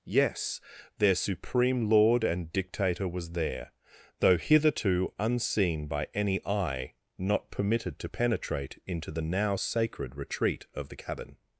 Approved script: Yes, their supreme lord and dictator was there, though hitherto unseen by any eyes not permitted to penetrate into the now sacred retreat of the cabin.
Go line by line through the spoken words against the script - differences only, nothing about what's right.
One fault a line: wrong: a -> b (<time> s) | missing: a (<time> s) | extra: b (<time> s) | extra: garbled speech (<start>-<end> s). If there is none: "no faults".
wrong: eyes -> eye (6.5 s)